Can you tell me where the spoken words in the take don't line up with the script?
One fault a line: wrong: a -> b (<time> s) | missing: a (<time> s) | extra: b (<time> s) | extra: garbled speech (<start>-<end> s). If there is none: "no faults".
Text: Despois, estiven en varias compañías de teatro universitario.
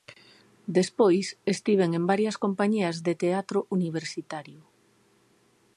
no faults